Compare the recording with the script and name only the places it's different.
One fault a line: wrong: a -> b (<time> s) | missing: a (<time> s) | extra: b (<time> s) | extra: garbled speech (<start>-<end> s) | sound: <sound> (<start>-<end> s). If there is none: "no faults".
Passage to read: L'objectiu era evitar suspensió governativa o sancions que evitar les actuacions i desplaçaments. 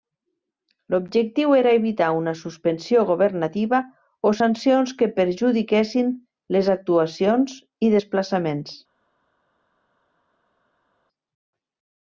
extra: una (2.2 s)
wrong: evitar -> perjudiquessin (5.2 s)